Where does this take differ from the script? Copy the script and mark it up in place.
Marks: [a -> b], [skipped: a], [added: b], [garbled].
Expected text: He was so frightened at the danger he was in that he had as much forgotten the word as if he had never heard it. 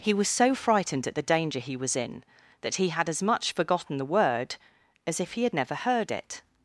He was so frightened at the danger he was in that he had as much forgotten the word as if he had never heard it.